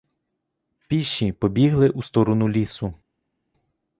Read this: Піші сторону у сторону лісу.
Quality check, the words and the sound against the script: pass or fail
fail